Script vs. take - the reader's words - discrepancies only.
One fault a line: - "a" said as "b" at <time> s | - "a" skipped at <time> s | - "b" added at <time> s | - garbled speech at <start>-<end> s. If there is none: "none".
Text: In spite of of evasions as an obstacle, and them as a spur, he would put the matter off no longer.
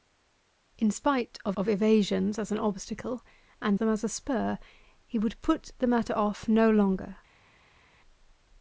none